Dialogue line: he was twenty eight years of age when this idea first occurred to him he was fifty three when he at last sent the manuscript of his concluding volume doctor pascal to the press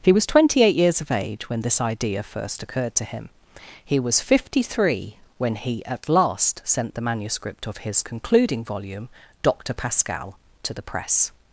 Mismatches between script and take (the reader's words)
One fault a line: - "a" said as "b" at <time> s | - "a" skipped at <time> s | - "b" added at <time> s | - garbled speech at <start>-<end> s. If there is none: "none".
none